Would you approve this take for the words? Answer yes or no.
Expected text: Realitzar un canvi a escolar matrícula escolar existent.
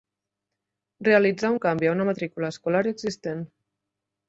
no